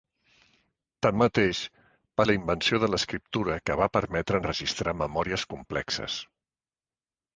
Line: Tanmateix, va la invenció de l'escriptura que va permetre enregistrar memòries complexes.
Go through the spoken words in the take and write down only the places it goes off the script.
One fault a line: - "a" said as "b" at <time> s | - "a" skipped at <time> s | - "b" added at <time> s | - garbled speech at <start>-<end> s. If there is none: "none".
none